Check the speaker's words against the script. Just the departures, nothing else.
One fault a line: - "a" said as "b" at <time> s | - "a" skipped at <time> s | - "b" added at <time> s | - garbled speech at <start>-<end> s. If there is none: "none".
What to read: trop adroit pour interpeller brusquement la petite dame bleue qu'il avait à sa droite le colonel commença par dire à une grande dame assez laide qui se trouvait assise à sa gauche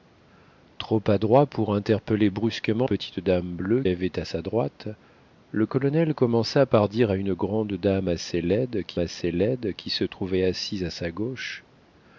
- "la" skipped at 2.9 s
- "qu'il" skipped at 3.8 s
- "assez laide qui" added at 9.0 s